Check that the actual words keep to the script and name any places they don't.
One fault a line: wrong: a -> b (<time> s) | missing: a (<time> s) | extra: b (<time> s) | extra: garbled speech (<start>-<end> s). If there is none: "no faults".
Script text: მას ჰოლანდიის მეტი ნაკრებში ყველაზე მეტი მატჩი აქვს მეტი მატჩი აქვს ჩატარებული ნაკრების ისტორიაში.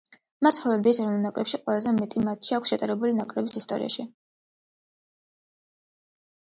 wrong: მეტი -> ეროვნულ (1.0 s)
missing: მეტი მატჩი აქვს (2.7 s)